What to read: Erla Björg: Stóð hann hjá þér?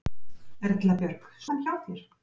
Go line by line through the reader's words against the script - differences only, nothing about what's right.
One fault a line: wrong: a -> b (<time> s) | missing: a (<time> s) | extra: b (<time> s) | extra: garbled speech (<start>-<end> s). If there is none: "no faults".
missing: Stóð (1.3 s)